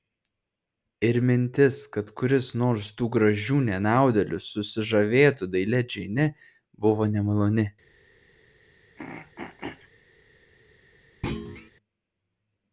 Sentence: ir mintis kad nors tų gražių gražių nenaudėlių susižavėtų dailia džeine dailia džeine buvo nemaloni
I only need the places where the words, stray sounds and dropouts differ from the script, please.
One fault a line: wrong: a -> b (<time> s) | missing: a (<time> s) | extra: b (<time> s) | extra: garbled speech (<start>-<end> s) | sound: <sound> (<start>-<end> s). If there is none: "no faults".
extra: kuris (2.2 s)
missing: gražių (3.6 s)
missing: dailia džeine (6.3 s)
sound: throat clearing (9.0-9.9 s)
sound: thud (11.2-11.7 s)